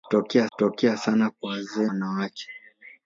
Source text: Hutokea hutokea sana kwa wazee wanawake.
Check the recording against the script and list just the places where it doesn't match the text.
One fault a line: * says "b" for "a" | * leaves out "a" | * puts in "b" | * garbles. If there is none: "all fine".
all fine